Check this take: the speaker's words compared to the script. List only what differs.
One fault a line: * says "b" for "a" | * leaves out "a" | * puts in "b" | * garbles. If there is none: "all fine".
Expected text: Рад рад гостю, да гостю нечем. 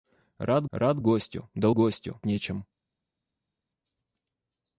all fine